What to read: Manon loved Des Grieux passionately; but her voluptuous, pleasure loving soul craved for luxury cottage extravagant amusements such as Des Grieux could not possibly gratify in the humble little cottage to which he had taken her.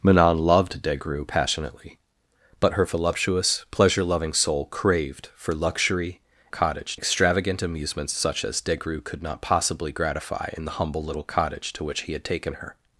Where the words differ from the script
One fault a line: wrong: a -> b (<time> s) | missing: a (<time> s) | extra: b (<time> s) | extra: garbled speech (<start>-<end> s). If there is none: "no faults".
no faults